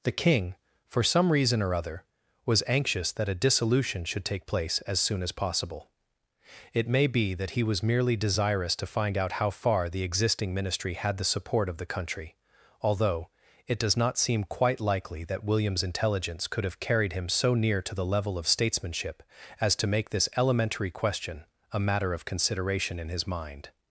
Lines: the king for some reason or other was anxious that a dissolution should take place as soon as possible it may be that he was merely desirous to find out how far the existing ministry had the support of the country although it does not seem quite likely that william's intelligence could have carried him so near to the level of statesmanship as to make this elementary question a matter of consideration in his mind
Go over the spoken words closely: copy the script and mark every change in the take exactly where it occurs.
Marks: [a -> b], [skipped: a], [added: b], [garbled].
the king for some reason or other was anxious that a dissolution should take place as soon as possible it may be that he was merely desirous to find out how far the existing ministry had the support of the country although it does not seem quite likely that william's intelligence could have carried him so near to the level of statesmanship as to make this elementary question a matter of consideration in his mind